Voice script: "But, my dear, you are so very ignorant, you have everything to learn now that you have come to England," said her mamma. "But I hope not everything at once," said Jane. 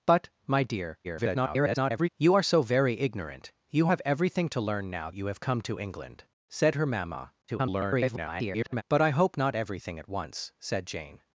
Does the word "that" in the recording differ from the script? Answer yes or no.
yes